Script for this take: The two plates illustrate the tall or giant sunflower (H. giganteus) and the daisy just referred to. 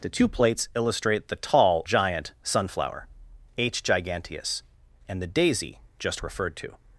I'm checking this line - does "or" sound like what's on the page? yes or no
no